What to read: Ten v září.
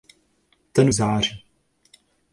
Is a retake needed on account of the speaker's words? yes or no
no